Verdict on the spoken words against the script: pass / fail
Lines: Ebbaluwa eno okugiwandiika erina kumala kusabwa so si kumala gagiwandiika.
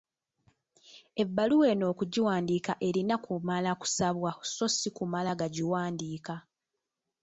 pass